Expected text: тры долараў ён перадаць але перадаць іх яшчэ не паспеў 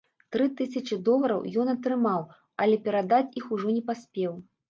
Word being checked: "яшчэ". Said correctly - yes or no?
no